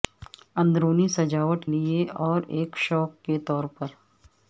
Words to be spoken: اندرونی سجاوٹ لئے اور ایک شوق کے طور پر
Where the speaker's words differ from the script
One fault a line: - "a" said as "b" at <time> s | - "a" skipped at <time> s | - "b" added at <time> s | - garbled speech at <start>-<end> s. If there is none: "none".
none